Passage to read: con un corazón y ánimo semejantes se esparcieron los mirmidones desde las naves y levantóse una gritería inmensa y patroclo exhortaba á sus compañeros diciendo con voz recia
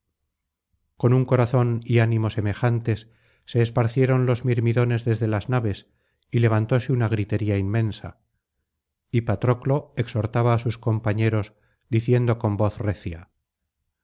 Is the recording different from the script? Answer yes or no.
no